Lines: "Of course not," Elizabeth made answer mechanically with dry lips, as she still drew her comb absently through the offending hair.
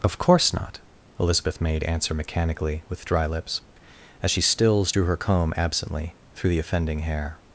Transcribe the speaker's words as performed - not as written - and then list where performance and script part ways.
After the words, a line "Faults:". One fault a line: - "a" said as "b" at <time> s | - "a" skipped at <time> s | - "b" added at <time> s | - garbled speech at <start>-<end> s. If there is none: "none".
"Of course not," Elizabeth made answer mechanically with dry lips, as she stills drew her comb absently through the offending hair.
Faults:
- "still" said as "stills" at 4.4 s